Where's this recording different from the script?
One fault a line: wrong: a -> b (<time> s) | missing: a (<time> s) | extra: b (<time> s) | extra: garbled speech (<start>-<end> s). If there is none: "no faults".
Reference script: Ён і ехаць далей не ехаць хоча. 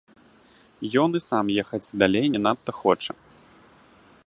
extra: сам (1.3 s)
wrong: ехаць -> надта (2.4 s)